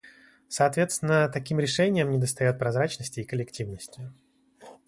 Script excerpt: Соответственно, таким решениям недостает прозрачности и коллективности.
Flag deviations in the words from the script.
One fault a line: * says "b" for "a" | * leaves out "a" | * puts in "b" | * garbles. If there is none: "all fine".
all fine